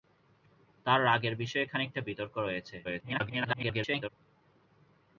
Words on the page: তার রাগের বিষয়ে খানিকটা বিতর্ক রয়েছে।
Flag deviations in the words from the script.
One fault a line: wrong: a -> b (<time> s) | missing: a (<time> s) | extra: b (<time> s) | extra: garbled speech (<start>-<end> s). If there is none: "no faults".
extra: garbled speech (2.8-4.1 s)